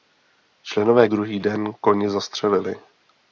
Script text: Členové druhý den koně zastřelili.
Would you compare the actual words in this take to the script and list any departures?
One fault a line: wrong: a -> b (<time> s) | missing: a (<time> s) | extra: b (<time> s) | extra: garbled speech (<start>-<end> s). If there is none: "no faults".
no faults